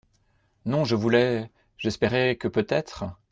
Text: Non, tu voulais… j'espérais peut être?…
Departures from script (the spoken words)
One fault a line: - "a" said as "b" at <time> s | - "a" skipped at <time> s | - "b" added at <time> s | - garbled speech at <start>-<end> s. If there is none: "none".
- "tu" said as "je" at 0.8 s
- "que" added at 2.4 s